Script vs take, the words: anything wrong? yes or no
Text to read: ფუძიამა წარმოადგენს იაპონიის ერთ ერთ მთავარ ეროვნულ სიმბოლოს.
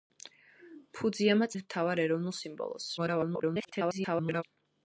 yes